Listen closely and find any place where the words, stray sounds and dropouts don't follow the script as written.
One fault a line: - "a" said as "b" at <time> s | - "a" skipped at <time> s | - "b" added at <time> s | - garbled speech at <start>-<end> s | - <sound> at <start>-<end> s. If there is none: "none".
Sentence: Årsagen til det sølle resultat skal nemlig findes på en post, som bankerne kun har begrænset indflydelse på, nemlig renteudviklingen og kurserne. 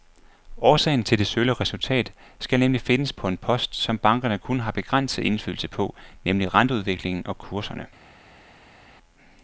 none